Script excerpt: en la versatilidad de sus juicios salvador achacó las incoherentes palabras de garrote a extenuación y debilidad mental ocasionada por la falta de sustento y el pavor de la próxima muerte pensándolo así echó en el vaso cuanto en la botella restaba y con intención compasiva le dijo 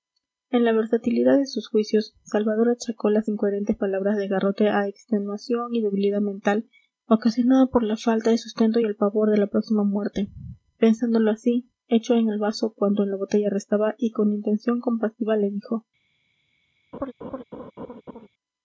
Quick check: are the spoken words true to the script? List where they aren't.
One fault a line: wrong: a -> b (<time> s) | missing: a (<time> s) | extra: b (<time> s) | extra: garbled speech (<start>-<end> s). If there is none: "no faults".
no faults